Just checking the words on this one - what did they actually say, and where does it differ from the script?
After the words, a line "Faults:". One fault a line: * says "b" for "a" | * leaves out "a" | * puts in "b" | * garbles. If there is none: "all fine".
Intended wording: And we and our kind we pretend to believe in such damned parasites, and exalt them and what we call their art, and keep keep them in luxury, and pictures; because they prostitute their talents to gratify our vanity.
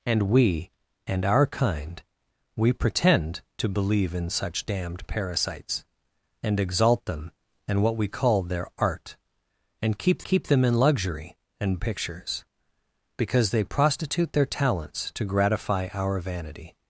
And we and our kind we pretend to believe in such damned parasites, and exalt them and what we call their art, and keep keep them in luxury, and pictures; because they prostitute their talents to gratify our vanity.
Faults:
all fine